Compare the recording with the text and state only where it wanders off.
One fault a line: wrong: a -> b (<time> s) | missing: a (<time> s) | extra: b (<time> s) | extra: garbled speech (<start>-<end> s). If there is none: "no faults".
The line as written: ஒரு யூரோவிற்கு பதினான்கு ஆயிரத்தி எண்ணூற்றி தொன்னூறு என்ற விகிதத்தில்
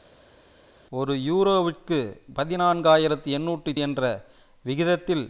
missing: தொன்னூறு (3.7 s)